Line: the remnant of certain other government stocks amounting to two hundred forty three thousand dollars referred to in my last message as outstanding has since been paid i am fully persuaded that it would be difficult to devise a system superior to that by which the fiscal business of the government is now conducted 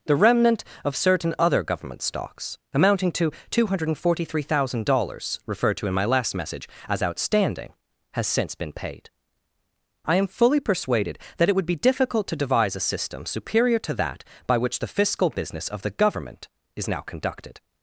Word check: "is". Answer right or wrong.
right